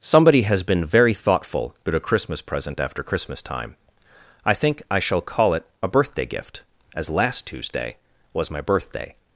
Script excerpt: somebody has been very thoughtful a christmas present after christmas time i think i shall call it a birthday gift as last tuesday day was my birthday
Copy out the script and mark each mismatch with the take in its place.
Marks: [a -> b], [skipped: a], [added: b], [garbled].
somebody has been very thoughtful [added: about] a christmas present after christmas time i think i shall call it a birthday gift as last tuesday [skipped: day] was my birthday